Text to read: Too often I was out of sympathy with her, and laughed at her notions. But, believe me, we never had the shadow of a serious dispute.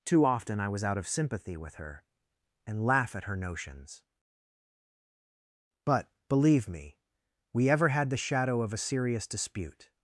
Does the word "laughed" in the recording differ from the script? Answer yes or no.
yes